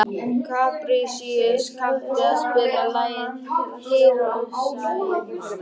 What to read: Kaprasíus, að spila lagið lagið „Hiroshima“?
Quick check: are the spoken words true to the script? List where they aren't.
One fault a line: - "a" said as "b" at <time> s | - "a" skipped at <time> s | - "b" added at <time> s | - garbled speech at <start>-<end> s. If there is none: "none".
- "kanntu" added at 1.8 s
- "lagið" skipped at 3.3 s